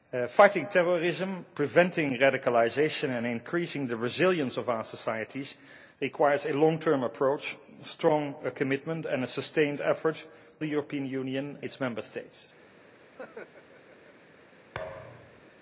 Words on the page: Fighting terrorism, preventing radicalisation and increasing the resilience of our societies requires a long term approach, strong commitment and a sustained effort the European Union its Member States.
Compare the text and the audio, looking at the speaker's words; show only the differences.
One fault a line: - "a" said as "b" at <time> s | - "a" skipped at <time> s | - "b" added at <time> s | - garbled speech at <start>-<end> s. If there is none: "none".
none